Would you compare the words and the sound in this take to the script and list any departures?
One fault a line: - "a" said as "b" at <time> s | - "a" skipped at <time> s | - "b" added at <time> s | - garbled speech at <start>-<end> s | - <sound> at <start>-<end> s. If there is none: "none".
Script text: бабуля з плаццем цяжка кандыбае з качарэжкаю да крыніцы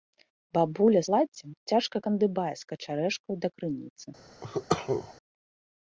- "з" skipped at 1.0 s
- cough at 4.4-5.1 s